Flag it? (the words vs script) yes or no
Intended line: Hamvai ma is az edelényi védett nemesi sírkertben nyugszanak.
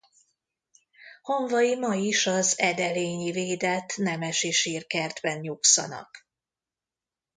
no